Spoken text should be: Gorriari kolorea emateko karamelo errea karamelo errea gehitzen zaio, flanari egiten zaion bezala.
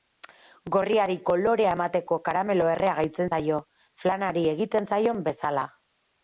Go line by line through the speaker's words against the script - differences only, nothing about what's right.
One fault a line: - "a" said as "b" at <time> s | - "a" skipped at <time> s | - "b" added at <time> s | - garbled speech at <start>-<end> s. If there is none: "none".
- "karamelo errea" skipped at 2.9 s